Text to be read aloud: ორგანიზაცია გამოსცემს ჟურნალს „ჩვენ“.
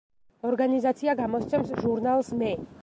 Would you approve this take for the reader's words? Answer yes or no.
no